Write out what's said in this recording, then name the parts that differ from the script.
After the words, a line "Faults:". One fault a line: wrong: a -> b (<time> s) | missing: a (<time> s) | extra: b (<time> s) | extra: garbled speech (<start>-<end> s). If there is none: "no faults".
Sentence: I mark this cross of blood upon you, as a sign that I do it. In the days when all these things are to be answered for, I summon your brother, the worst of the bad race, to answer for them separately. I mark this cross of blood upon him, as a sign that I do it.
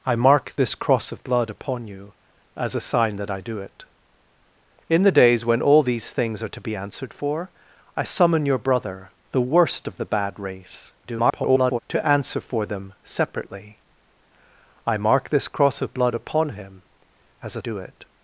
I mark this cross of blood upon you, as a sign that I do it. In the days when all these things are to be answered for, I summon your brother, the worst of the bad race, [garbled] to answer for them separately. I mark this cross of blood upon him, as a do it.
Faults:
extra: garbled speech (11.0-11.8 s)
missing: sign that I (17.6 s)